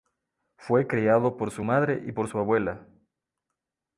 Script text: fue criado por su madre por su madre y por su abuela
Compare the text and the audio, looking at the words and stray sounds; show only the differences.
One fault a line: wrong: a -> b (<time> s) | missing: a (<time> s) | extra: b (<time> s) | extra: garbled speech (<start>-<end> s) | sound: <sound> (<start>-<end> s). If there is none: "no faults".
missing: por su madre (2.0 s)